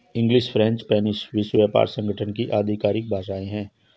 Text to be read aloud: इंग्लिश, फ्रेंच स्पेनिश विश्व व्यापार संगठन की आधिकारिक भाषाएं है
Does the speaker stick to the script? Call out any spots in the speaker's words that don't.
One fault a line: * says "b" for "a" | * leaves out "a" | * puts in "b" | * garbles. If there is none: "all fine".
all fine